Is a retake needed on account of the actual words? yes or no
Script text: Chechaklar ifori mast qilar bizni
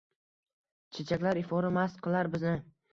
no